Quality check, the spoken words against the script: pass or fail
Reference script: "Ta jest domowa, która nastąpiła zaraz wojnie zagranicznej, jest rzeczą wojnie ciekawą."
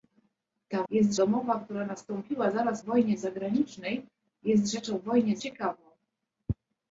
pass